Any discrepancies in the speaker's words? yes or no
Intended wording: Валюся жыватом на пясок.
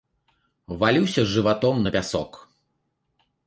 no